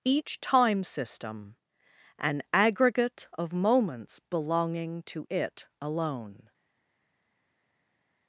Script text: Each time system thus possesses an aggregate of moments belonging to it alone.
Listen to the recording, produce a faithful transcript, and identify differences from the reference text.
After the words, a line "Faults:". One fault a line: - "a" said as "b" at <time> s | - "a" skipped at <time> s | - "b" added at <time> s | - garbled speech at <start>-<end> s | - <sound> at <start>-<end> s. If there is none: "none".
Each time system an aggregate of moments belonging to it alone.
Faults:
- "thus possesses" skipped at 1.6 s